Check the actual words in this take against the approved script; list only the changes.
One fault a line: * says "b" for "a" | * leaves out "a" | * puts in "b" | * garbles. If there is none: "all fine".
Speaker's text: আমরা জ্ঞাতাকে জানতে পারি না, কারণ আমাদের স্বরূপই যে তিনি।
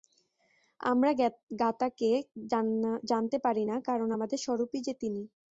all fine